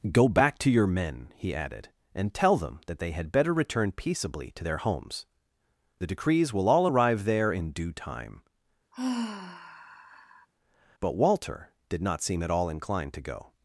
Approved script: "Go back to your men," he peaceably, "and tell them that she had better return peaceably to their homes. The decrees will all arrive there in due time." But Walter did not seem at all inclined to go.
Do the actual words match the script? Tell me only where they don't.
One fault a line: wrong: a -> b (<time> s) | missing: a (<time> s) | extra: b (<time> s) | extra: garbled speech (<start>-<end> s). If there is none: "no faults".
wrong: peaceably -> added (1.5 s)
wrong: she -> they (3.0 s)